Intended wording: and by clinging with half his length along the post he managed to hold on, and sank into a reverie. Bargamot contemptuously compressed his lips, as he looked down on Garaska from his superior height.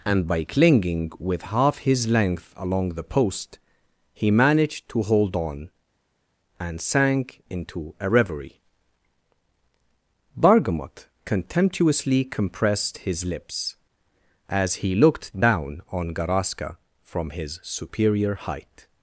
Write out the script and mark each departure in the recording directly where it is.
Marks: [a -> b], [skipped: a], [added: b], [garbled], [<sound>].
and by clinging with half his length along the post he managed to hold on, and sank into a reverie. Bargamot contemptuously compressed his lips, as he looked down on Garaska from his superior height.